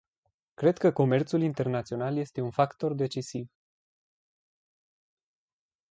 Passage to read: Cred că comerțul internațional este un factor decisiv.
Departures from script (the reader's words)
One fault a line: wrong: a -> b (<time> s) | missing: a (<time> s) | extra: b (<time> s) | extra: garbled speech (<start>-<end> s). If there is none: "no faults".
no faults